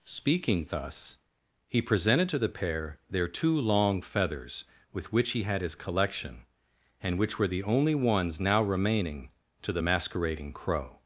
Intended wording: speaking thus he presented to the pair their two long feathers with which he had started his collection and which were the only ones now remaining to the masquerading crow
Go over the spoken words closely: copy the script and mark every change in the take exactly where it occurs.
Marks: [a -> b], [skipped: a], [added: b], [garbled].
speaking thus he presented to the pair their two long feathers with which he had [skipped: started] his collection and which were the only ones now remaining to the masquerading crow